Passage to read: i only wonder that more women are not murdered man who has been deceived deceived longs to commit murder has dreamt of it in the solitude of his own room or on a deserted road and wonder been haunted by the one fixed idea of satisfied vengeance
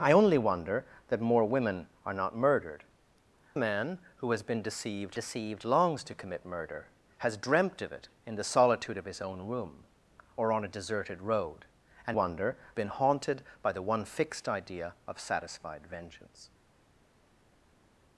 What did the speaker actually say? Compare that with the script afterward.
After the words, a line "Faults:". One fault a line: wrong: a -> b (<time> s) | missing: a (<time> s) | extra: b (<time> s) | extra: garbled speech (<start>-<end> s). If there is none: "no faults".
i only wonder that more women are not murdered man who has been deceived deceived longs to commit murder has dreamt of it in the solitude of his own room or on a deserted road and wonder been haunted by the one fixed idea of satisfied vengeance
Faults:
no faults